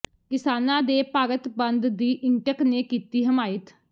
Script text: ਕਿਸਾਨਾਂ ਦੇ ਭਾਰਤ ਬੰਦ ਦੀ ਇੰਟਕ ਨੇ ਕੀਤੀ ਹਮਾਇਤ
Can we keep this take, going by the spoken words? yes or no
yes